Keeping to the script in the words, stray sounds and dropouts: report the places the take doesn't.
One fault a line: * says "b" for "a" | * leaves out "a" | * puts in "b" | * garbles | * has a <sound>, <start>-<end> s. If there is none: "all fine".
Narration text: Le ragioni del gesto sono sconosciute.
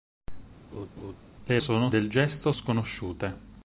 * has a laugh, 0.7-1.2 s
* says "sono" for "ragioni"
* leaves out "sono"